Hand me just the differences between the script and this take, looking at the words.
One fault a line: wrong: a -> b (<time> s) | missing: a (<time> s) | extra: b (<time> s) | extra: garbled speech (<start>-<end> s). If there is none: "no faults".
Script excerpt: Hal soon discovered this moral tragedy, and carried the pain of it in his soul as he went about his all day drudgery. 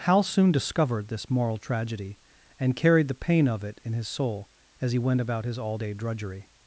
no faults